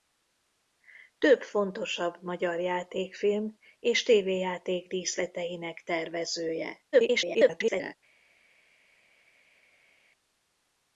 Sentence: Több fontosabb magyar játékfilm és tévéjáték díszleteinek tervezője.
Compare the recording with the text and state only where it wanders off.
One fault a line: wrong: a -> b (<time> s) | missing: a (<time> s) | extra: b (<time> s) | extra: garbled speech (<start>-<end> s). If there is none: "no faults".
extra: garbled speech (6.9-8.0 s)